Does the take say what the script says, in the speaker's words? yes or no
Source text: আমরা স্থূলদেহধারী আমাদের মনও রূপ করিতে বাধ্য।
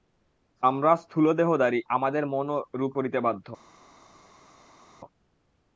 yes